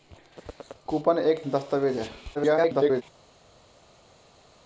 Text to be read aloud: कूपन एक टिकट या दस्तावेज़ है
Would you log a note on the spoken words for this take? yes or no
yes